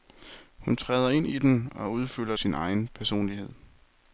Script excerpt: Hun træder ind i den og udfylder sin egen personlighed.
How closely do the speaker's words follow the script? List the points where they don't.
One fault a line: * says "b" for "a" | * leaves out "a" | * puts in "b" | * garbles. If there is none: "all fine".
all fine